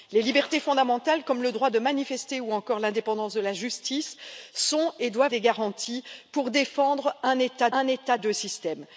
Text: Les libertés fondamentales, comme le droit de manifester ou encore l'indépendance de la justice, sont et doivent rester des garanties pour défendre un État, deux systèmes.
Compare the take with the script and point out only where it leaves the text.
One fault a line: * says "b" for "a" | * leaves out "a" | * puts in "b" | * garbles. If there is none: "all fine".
* leaves out "rester"
* puts in "un État"